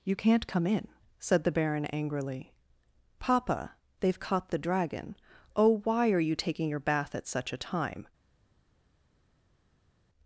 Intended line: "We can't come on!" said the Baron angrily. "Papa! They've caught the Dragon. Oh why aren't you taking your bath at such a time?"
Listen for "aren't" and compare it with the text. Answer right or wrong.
wrong